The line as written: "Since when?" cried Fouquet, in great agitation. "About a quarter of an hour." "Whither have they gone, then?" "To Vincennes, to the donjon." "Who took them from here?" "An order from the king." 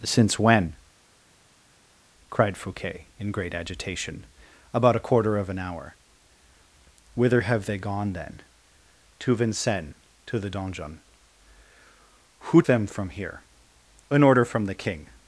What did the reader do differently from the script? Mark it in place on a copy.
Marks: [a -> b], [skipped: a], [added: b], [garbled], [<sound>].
"Since when?" cried Fouquet, in great agitation. "About a quarter of an hour." "Whither have they gone, then?" "To Vincennes, to the donjon." "Who [skipped: took] them from here?" "An order from the king."